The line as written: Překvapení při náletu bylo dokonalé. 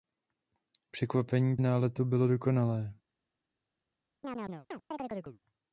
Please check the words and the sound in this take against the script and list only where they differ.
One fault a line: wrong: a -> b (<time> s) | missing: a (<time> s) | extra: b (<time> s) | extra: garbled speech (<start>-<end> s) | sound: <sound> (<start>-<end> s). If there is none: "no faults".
missing: při (1.6 s)
sound: chirp (4.2-5.4 s)